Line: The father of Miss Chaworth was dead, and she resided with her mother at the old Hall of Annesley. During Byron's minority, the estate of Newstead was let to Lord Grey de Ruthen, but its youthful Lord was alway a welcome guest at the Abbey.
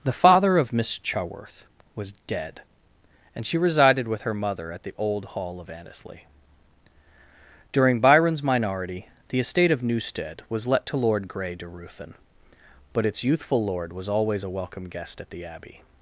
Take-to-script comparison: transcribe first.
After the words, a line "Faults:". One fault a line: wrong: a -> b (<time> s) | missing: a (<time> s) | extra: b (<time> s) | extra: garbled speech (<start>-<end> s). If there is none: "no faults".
The father of Miss Chaworth was dead, and she resided with her mother at the old Hall of Annesley. During Byron's minority, the estate of Newstead was let to Lord Grey de Ruthen, but its youthful Lord was always a welcome guest at the Abbey.
Faults:
wrong: alway -> always (14.1 s)